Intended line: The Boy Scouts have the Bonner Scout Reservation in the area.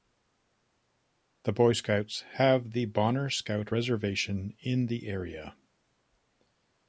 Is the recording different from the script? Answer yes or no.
no